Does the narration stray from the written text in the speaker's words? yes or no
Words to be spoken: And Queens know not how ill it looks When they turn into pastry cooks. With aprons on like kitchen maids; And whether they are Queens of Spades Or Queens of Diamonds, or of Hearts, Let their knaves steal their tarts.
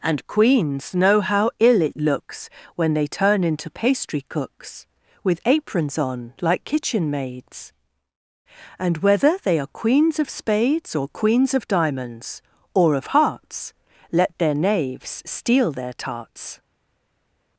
yes